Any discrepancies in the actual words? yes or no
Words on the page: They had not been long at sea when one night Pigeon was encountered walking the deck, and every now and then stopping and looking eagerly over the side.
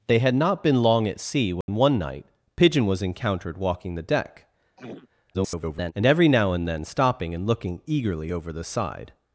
yes